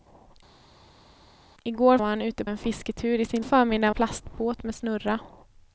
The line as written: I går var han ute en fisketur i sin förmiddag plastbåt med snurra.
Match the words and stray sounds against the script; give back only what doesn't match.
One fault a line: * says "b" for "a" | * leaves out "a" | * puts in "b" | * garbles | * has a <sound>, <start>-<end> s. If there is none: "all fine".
all fine